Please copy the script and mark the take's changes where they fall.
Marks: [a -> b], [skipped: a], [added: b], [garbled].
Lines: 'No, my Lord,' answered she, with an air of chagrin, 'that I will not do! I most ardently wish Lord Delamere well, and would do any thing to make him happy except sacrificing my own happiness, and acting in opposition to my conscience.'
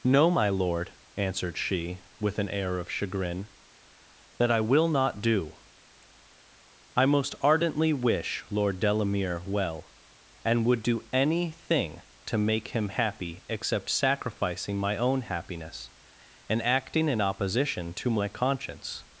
'No, my Lord,' answered she, with an air of chagrin, 'that I will not do! I most ardently wish Lord Delamere well, and would do any thing to make him happy except sacrificing my own happiness, and acting in opposition to my conscience.'